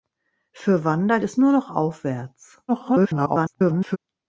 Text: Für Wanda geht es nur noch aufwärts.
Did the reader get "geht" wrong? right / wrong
wrong